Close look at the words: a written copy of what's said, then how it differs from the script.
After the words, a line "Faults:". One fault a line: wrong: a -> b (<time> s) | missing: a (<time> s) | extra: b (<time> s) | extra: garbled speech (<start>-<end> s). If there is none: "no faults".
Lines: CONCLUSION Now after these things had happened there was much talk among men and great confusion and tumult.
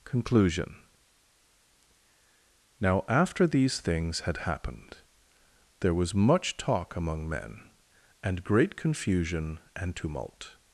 CONCLUSION Now after these things had happened there was much talk among men and great confusion and tumult.
Faults:
no faults